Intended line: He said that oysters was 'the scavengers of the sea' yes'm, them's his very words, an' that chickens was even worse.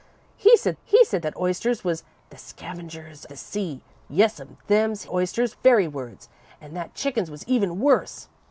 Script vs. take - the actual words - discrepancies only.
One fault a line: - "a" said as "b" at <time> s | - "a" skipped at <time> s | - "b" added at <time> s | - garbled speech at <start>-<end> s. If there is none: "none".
- "he said" added at 0.8 s
- "of" skipped at 3.3 s
- "his" said as "oysters" at 5.1 s